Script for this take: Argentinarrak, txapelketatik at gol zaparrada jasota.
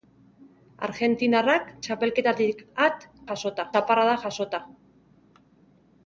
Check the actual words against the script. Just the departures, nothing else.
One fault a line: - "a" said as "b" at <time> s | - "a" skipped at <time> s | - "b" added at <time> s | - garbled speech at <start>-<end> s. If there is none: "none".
- "gol" said as "jasota" at 3.3 s